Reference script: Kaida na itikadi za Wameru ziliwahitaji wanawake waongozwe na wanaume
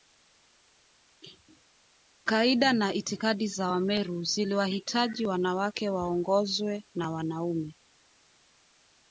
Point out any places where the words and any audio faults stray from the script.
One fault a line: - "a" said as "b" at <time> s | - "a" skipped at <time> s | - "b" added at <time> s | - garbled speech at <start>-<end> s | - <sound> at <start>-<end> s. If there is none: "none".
none